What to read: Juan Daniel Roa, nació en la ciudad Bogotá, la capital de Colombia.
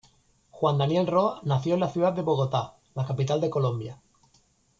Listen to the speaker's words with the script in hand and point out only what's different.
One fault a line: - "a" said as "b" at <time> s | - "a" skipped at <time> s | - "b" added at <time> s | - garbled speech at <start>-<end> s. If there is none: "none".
- "de" added at 2.1 s